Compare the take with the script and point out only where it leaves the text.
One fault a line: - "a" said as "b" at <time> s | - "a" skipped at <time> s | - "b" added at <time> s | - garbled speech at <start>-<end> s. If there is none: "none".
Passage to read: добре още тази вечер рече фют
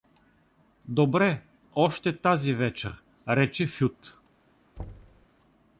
none